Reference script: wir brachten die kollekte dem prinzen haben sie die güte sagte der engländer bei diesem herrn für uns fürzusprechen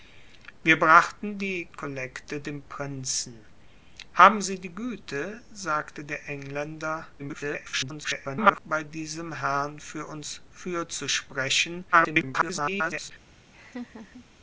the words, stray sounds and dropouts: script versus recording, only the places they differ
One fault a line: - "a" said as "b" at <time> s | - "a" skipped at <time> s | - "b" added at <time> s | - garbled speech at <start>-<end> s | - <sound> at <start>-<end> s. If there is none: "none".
- garbled speech at 7.2-8.6 s
- garbled speech at 11.9-13.1 s
- laugh at 13.5-14.3 s